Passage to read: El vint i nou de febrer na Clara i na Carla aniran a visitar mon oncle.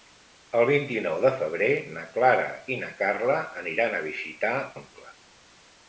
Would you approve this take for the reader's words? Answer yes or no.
no